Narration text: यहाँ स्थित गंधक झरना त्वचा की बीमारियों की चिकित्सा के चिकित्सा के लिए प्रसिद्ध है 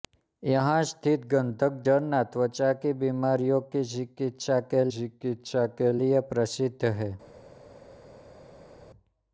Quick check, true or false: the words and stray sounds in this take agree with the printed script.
true